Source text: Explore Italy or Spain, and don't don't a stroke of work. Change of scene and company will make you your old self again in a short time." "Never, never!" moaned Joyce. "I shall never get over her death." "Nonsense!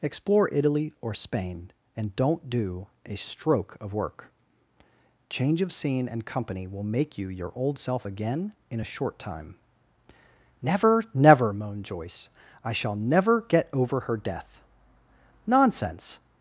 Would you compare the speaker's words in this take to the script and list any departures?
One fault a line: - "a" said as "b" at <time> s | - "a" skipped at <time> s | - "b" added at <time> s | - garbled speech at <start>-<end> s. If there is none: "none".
- "don't" said as "do" at 2.5 s